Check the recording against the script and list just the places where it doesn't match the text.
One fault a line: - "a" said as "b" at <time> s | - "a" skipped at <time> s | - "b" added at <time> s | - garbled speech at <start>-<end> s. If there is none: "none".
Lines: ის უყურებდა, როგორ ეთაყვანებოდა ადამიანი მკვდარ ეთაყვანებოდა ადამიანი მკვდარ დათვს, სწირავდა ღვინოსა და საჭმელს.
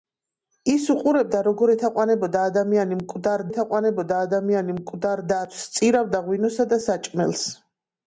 none